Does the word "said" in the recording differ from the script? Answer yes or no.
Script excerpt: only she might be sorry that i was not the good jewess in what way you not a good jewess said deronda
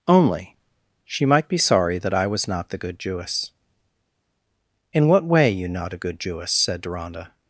no